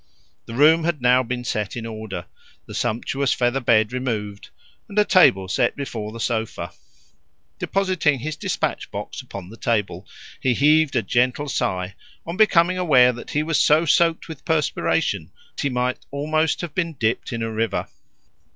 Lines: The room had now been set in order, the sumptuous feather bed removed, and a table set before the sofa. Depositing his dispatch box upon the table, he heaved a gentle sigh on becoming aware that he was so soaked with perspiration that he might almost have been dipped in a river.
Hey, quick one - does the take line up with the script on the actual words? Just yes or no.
no